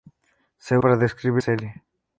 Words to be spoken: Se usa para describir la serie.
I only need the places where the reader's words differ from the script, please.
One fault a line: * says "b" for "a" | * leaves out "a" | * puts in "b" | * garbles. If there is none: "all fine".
* leaves out "usa"
* leaves out "la"